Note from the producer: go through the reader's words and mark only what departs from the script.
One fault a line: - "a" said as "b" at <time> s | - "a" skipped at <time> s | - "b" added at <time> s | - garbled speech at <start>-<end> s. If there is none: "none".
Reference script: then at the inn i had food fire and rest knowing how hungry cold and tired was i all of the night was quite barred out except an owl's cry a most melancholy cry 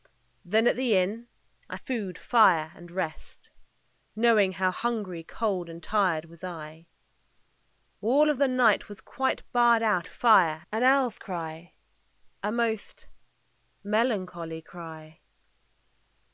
- "had" skipped at 1.8 s
- "except" said as "fire" at 10.1 s